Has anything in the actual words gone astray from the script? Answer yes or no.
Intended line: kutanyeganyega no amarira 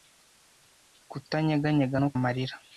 no